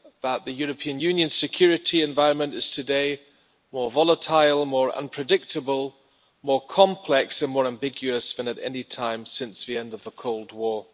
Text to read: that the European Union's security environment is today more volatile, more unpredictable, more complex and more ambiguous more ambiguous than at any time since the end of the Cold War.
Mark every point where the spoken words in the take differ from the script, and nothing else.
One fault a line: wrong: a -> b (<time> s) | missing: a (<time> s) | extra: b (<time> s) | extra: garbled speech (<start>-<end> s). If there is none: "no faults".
missing: more ambiguous (8.3 s)